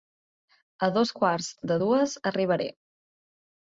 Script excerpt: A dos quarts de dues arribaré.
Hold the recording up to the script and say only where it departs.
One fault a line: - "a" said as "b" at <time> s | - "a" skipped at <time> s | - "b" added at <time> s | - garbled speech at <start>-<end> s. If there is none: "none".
none